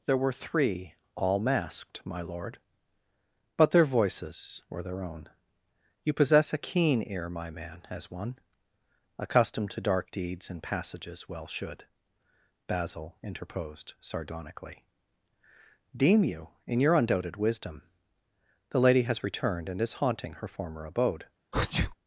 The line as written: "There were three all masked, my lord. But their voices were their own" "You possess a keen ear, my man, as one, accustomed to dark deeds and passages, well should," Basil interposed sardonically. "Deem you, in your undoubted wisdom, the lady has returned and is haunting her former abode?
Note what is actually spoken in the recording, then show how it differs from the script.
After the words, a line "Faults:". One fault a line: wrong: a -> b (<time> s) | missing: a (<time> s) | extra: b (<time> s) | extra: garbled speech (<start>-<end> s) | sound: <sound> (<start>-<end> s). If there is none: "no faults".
"There were three all masked, my lord. But their voices were their own" "You possess a keen ear, my man, as one, accustomed to dark deeds and passages, well should," Basil interposed sardonically. "Deem you, in your undoubted wisdom, the lady has returned and is haunting her former abode?
Faults:
sound: sneeze (21.5-22.0 s)